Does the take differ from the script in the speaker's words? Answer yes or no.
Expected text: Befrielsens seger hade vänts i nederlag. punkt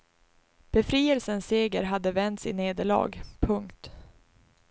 no